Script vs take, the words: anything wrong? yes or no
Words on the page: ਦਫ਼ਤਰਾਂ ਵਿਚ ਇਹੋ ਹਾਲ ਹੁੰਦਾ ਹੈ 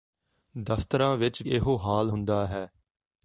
no